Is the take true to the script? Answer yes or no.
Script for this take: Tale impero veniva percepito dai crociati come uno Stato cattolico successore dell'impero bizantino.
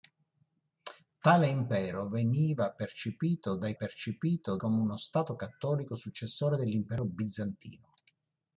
no